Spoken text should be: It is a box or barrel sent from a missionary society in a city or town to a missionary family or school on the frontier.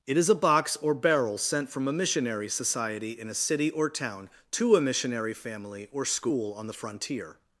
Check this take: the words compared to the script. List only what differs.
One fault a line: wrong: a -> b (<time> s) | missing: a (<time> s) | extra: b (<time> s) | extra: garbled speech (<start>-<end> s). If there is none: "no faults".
no faults